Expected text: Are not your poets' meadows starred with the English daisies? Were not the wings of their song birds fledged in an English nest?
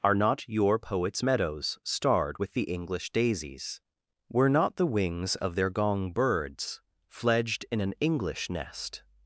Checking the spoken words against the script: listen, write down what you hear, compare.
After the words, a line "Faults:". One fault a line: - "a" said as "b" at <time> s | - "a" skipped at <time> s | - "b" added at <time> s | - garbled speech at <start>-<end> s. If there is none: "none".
Are not your poets' meadows starred with the English daisies? Were not the wings of their gong birds fledged in an English nest?
Faults:
- "song" said as "gong" at 5.7 s